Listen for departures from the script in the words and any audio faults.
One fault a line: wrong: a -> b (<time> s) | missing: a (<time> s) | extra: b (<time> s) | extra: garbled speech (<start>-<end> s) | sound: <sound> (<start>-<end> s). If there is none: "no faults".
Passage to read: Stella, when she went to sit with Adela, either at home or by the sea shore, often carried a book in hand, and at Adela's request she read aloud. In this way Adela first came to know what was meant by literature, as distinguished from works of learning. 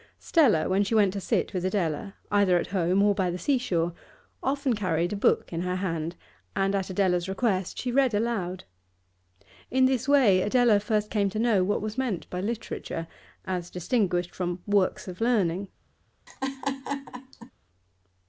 extra: her (5.6 s)
sound: laugh (16.3-17.5 s)